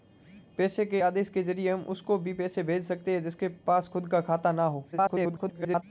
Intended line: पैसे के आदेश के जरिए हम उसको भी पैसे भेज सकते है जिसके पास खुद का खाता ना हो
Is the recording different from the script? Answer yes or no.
yes